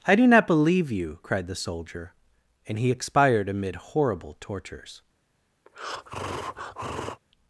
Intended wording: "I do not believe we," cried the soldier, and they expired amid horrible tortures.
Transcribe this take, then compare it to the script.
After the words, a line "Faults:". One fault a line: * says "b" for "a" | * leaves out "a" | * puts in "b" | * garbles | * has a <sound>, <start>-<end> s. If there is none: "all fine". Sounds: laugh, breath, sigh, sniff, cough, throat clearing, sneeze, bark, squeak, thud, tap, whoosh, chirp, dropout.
"I do not believe you," cried the soldier, and he expired amid horrible tortures.
Faults:
* says "you" for "we"
* says "he" for "they"
* has a breath, 5.7-7.2 s